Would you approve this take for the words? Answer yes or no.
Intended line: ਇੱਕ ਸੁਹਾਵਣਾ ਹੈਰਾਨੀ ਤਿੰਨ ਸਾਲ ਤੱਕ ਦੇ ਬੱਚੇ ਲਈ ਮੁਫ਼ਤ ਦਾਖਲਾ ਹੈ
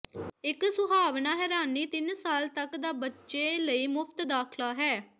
no